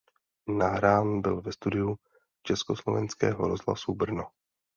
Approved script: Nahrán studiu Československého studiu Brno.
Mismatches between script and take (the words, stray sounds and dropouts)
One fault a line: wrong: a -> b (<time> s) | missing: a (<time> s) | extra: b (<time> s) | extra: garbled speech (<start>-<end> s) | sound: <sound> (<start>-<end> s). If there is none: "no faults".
extra: byl ve (1.2 s)
wrong: studiu -> rozhlasu (3.5 s)